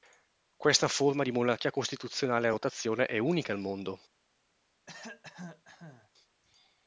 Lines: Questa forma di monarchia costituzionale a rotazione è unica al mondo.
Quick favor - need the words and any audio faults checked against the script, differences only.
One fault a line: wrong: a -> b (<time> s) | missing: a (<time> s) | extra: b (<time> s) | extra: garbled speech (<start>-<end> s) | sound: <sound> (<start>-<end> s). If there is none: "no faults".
sound: cough (4.9-6.1 s)